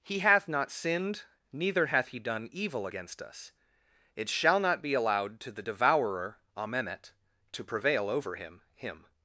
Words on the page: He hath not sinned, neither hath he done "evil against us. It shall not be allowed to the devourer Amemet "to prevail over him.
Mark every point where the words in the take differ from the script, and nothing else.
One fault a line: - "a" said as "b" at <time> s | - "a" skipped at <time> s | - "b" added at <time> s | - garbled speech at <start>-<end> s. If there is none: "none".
- "him" added at 8.7 s